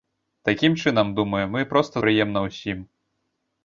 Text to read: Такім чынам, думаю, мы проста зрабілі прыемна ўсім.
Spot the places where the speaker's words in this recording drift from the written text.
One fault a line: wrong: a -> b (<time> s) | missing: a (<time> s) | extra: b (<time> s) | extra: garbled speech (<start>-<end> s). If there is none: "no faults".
missing: зрабілі (1.9 s)